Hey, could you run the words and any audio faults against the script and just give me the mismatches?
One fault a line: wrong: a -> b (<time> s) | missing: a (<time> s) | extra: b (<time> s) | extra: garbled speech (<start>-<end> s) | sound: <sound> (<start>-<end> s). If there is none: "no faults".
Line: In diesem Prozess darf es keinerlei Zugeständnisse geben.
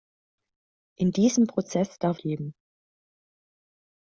missing: es keinerlei Zugeständnisse (2.2 s)